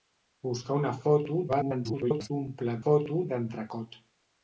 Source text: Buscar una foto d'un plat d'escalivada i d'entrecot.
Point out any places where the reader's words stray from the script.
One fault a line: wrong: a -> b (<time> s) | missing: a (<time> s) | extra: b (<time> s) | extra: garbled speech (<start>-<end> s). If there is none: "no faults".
extra: garbled speech (1.5-2.3 s)
wrong: d'escalivada -> foto (2.8 s)